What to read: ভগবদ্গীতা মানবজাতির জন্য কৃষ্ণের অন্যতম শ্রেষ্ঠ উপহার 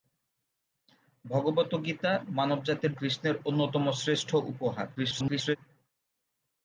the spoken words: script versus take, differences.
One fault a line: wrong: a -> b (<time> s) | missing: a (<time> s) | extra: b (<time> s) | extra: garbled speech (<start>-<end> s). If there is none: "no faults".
missing: জন্য (2.9 s)
extra: garbled speech (5.0-5.6 s)